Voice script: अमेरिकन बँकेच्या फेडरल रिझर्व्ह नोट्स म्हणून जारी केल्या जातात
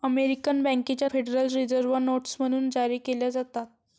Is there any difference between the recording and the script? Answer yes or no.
no